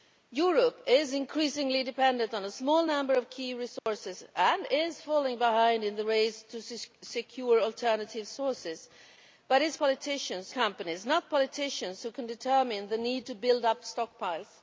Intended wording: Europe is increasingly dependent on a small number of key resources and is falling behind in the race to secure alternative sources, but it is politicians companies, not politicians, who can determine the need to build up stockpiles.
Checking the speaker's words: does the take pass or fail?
pass